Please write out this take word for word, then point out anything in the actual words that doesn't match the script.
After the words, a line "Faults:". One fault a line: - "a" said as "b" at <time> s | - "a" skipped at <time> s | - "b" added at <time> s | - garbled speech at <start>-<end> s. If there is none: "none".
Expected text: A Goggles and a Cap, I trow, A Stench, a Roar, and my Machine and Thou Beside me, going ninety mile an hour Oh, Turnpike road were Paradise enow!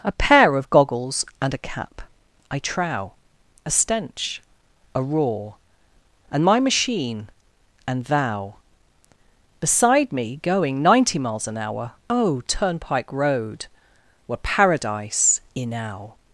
A pair of Goggles and a Cap, I trow, A Stench, a Roar, and my Machine and Thou Beside me, going ninety miles an hour Oh, Turnpike road were Paradise enow!
Faults:
- "pair of" added at 0.1 s
- "mile" said as "miles" at 11.2 s